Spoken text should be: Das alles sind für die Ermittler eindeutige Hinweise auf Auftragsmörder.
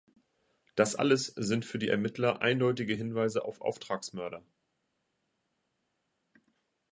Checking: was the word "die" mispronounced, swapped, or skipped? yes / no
no